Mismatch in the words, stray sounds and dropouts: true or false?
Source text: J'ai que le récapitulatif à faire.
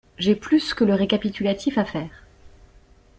true